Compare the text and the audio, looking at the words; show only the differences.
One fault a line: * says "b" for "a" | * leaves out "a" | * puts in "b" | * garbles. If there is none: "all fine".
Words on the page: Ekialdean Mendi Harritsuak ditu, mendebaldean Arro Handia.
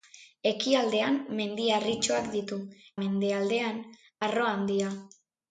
all fine